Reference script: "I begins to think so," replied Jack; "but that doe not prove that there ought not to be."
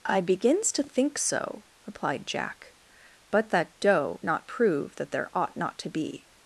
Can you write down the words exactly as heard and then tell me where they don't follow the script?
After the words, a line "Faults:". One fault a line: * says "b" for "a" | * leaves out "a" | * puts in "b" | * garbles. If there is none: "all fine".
"I begins to think so," replied Jack; "but that doe not prove that there ought not to be."
Faults:
all fine